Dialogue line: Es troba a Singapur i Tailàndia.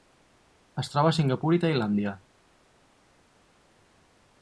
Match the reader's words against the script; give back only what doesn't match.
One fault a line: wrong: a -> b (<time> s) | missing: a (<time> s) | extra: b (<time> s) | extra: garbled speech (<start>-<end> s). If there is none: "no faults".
no faults